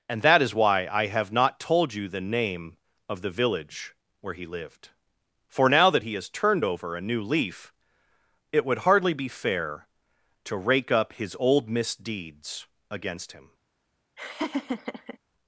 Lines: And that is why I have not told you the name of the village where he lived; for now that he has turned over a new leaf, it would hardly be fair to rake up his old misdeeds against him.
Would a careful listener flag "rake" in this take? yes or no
no